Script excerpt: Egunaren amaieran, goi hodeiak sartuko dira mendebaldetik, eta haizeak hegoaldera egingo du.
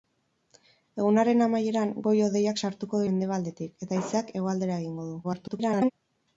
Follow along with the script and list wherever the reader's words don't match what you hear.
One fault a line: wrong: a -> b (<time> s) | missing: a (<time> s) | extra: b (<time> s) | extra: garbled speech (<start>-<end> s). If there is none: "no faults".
missing: dira (3.0 s)
extra: garbled speech (5.2-5.9 s)